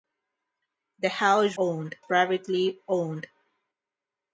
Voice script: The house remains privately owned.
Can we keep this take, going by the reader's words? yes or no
no